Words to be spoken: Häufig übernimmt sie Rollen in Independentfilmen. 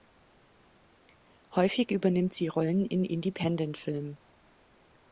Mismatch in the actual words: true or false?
false